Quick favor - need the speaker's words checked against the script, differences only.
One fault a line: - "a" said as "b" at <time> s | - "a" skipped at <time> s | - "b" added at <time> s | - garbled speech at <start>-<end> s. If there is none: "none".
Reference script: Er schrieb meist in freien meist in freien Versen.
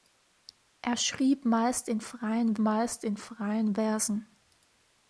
none